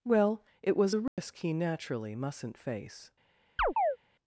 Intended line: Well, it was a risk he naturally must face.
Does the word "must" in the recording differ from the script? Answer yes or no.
yes